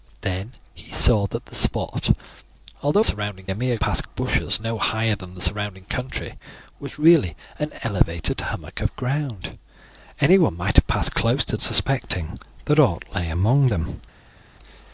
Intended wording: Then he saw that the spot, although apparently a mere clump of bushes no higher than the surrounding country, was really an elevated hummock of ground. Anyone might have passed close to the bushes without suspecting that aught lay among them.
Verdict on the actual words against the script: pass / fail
fail